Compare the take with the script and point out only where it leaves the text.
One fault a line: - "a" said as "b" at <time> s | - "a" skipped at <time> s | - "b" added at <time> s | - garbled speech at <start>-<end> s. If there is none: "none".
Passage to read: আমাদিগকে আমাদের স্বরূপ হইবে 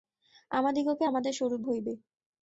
none